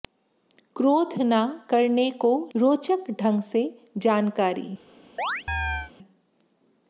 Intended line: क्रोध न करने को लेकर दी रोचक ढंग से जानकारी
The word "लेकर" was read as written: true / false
false